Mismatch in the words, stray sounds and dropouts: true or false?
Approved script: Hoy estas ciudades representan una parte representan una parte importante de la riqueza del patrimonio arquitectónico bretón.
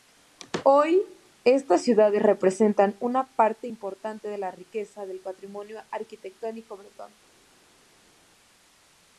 true